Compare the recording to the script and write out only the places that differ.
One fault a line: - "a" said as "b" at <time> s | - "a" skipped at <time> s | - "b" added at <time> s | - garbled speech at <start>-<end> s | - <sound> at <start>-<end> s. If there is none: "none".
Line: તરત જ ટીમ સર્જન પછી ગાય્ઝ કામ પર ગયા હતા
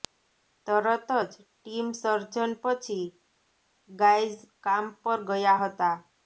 none